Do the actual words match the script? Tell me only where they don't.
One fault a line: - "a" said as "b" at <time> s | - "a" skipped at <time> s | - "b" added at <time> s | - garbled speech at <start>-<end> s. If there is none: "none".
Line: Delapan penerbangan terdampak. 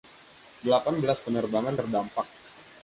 - "belas" added at 1.0 s